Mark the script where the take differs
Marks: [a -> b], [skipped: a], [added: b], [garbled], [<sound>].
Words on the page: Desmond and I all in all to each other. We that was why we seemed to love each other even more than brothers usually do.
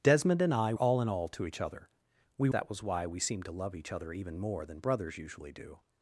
Desmond and I all in all to each other. We that was why we seemed to love each other even more than brothers usually do.